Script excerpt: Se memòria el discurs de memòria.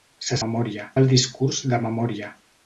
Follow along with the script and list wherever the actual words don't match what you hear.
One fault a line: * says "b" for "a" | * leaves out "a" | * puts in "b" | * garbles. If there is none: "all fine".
all fine